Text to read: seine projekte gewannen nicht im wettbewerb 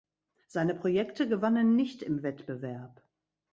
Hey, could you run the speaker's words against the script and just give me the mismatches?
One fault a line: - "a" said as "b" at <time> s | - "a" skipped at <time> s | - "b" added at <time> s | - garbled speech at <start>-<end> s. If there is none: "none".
none